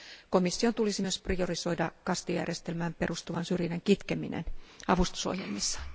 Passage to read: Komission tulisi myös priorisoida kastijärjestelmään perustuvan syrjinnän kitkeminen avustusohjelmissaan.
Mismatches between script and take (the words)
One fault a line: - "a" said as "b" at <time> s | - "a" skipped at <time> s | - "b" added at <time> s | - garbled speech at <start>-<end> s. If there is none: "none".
none